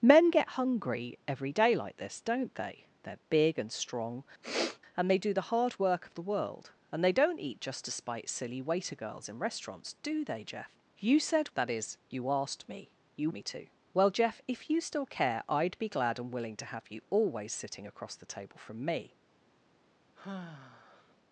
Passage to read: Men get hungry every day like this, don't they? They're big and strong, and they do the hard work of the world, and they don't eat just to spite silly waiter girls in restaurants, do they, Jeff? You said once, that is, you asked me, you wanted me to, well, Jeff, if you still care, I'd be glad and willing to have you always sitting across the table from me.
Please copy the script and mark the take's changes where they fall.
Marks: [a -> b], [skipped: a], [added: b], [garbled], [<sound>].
Men get hungry every day like this, don't they? They're big and strong, [sniff] and they do the hard work of the world, and they don't eat just to spite silly waiter girls in restaurants, do they, Jeff? You said [skipped: once,] that is, you asked me, you [skipped: wanted] me to, well, Jeff, if you still care, I'd be glad and willing to have you always sitting across the table from me. [sigh]